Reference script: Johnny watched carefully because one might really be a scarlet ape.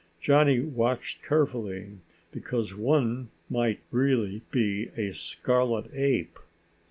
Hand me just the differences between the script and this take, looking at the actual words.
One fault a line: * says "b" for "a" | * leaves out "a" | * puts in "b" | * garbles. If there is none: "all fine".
all fine